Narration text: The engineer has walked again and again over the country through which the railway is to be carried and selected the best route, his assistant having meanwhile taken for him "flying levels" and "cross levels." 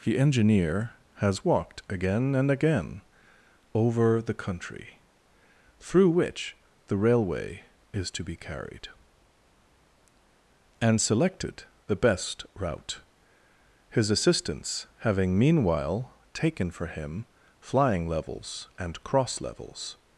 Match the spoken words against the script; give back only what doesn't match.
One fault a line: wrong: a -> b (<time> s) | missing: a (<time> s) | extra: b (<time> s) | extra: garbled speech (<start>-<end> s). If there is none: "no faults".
wrong: assistant -> assistants (14.1 s)